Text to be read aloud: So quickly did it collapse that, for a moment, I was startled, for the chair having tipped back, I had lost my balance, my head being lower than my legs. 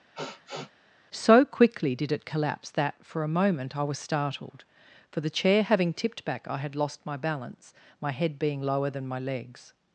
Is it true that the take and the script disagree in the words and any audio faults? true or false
true